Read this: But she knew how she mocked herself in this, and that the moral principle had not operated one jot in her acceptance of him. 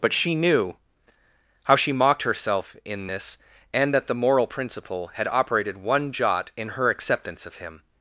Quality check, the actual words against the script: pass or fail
fail